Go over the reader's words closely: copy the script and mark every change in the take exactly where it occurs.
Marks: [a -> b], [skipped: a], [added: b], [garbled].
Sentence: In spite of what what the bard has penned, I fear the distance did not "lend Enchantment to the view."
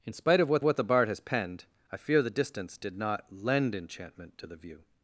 In spite of what what the bard has penned, I fear the distance did not "lend Enchantment to the view."